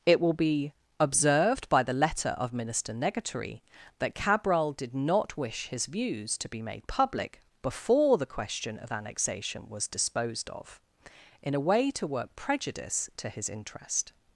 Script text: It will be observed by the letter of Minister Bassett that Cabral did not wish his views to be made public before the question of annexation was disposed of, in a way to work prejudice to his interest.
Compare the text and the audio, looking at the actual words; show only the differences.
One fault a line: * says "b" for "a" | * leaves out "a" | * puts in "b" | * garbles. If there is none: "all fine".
* says "Negatory" for "Bassett"